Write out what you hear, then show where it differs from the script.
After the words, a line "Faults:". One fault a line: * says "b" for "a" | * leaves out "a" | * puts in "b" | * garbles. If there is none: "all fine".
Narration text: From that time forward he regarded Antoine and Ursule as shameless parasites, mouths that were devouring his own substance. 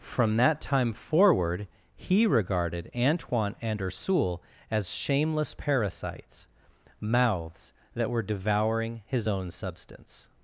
From that time forward he regarded Antoine and Ursule as shameless parasites, mouths that were devouring his own substance.
Faults:
all fine